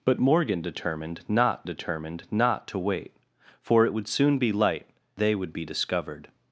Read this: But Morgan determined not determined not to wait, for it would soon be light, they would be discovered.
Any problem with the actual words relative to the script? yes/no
no